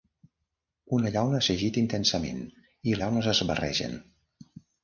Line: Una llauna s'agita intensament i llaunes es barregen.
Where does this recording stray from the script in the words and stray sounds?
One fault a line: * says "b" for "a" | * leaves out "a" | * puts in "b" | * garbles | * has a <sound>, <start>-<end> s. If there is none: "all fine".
all fine